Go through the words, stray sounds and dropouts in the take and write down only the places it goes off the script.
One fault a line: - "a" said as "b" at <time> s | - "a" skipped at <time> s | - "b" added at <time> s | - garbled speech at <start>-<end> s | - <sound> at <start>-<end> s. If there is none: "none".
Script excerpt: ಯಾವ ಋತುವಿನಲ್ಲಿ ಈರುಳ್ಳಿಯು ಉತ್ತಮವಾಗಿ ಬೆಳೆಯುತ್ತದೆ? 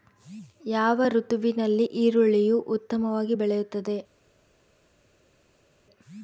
none